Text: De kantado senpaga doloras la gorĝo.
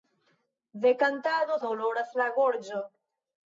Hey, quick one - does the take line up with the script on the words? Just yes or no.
no